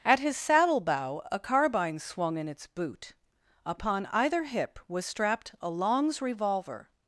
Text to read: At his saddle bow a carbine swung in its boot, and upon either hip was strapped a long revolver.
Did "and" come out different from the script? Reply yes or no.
yes